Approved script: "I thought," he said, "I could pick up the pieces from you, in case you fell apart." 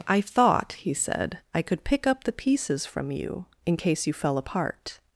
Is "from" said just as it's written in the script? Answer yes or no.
yes